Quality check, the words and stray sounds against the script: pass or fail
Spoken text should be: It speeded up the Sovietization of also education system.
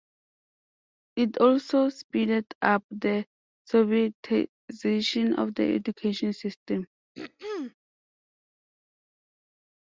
fail